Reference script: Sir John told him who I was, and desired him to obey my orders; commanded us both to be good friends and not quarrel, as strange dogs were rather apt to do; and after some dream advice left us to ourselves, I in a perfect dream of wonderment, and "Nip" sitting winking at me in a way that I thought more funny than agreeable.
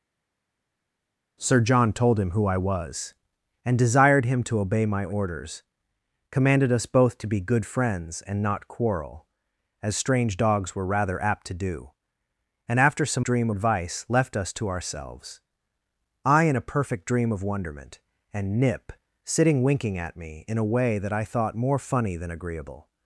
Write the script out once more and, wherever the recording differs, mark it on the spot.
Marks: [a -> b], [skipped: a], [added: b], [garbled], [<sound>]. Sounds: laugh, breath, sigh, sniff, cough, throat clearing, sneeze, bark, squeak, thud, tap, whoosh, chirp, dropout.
Sir John told him who I was, and desired him to obey my orders; commanded us both to be good friends and not quarrel, as strange dogs were rather apt to do; and after some dream advice left us to ourselves, I in a perfect dream of wonderment, and "Nip" sitting winking at me in a way that I thought more funny than agreeable.